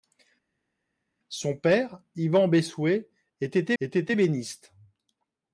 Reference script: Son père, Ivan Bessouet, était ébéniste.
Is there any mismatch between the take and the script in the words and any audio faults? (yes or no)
yes